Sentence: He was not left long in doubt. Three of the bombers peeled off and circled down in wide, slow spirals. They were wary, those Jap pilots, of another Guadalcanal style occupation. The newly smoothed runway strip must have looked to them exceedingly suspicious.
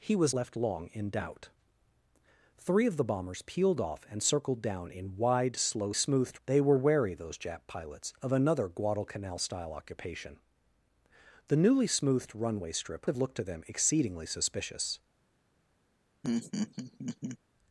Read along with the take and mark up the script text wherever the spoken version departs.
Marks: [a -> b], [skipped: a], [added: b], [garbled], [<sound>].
He was [skipped: not] left long in doubt. Three of the bombers peeled off and circled down in wide, slow [spirals. -> smoothed] They were wary, those Jap pilots, of another Guadalcanal style occupation. The newly smoothed runway strip [skipped: must] have looked to them exceedingly suspicious. [laugh]